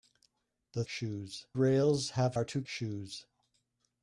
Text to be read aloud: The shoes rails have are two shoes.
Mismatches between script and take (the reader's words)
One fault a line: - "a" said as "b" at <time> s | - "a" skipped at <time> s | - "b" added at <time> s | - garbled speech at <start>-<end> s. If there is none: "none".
none